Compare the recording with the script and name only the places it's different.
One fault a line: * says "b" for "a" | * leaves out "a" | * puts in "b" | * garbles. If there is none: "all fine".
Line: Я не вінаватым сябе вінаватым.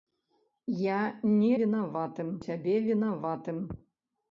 all fine